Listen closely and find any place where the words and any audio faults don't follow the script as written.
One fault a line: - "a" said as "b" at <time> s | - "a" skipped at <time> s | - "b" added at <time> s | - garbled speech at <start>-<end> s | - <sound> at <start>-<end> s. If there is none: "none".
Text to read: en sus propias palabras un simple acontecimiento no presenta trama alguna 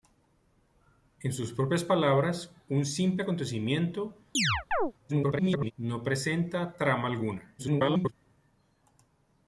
- chirp at 4.3-4.9 s
- garbled speech at 5.1-5.7 s
- garbled speech at 7.6-8.1 s